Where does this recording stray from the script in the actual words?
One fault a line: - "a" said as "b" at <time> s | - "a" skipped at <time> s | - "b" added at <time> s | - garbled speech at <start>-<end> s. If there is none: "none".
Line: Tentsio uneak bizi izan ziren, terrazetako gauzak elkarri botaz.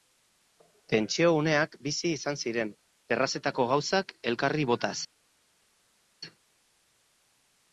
none